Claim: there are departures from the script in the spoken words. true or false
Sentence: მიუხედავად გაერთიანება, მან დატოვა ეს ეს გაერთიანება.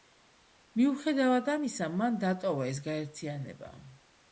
true